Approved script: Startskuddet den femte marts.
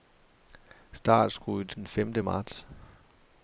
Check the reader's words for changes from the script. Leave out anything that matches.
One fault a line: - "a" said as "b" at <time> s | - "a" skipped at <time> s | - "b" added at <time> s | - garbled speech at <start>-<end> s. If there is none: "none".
none